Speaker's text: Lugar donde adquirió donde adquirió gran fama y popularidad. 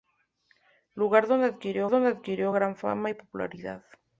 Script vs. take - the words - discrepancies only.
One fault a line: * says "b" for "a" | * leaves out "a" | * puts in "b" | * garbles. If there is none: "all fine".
all fine